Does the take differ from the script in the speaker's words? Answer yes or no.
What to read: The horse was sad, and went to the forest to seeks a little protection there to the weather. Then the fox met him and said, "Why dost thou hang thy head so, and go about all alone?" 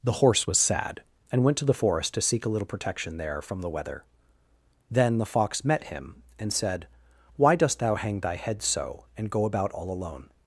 yes